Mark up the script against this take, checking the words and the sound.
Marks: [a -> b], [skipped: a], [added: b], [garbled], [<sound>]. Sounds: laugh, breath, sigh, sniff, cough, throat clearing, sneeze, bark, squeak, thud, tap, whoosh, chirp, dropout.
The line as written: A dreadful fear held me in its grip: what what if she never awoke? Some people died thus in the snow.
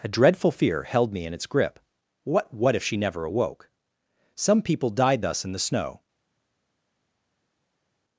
A dreadful fear held me in its grip: what what if she never awoke? Some people died thus in the snow.